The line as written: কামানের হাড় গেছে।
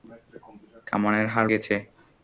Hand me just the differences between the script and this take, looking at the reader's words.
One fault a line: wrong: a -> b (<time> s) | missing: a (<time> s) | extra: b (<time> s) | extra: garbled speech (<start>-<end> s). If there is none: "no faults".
no faults